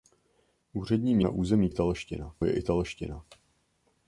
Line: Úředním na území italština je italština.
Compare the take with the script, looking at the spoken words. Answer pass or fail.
pass